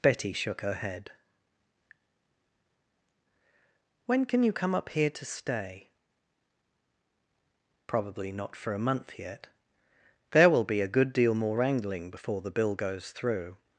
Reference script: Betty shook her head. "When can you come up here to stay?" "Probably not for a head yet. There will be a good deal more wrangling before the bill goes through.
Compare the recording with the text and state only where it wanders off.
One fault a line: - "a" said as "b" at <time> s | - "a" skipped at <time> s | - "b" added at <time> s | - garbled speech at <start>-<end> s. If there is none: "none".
- "head" said as "month" at 8.8 s